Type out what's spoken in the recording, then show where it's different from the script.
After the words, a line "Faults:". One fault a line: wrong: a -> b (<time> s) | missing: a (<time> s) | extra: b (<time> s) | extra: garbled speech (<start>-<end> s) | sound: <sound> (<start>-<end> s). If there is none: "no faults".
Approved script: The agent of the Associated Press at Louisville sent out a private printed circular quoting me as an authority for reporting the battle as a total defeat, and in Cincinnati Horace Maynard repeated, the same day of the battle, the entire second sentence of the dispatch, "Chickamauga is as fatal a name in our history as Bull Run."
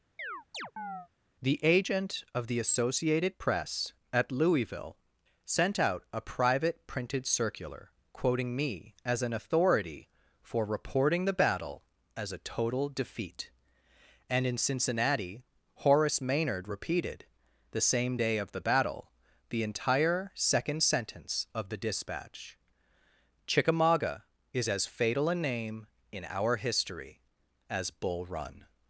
The agent of the Associated Press at Louisville sent out a private printed circular quoting me as an authority for reporting the battle as a total defeat, and in Cincinnati Horace Maynard repeated, the same day of the battle, the entire second sentence of the dispatch, "Chickamauga is as fatal a name in our history as Bull Run."
Faults:
sound: chirp (0.2-1.1 s)